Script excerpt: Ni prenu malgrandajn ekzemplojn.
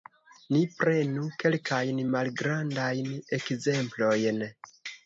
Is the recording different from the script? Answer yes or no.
yes